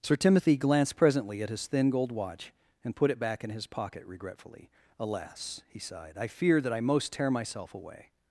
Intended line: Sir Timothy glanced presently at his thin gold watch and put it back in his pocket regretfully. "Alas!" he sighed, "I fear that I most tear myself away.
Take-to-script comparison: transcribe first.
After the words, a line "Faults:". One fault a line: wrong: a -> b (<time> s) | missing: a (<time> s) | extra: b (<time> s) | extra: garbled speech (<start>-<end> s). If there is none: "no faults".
Sir Timothy glanced presently at his thin gold watch and put it back in his pocket regretfully. "Alas!" he sighed, "I fear that I most tear myself away.
Faults:
no faults